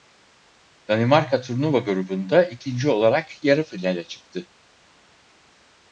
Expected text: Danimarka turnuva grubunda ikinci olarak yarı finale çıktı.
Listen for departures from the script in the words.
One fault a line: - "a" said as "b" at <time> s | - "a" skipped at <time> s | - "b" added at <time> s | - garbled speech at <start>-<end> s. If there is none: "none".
none